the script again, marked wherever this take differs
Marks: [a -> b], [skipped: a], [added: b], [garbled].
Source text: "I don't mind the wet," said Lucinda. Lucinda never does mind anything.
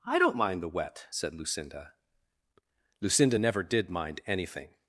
"I don't mind the wet," said Lucinda. Lucinda never [does -> did] mind anything.